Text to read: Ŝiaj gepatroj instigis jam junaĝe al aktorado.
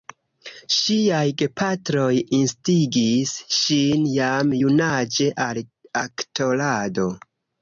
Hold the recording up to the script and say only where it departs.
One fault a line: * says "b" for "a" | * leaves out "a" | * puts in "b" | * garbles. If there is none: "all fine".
* puts in "ŝin"